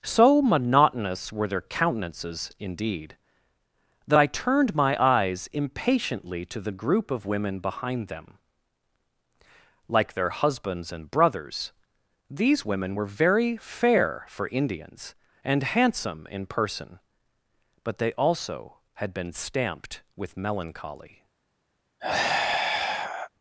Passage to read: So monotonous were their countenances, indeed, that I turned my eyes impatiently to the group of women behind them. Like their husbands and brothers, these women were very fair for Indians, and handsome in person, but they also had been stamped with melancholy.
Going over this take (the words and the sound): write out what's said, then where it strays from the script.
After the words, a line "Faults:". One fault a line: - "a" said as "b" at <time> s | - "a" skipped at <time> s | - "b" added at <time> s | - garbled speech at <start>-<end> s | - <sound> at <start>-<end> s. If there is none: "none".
So monotonous were their countenances, indeed, that I turned my eyes impatiently to the group of women behind them. Like their husbands and brothers, these women were very fair for Indians, and handsome in person, but they also had been stamped with melancholy.
Faults:
- sigh at 22.0-23.3 s